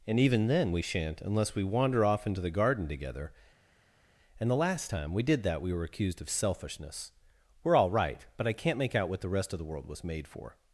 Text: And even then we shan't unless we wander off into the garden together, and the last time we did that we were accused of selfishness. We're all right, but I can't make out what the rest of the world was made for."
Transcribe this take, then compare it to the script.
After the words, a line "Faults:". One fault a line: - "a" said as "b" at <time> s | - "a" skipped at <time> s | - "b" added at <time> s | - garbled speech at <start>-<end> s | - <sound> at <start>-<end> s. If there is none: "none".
And even then we shan't unless we wander off into the garden together, and the last time we did that we were accused of selfishness. We're all right, but I can't make out what the rest of the world was made for."
Faults:
none